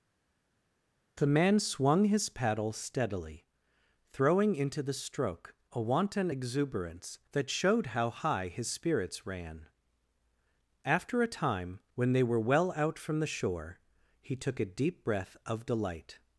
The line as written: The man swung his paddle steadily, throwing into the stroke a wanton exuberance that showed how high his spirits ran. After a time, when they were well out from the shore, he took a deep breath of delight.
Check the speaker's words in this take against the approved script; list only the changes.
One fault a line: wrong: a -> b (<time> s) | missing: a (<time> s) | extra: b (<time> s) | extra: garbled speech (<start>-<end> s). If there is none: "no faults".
no faults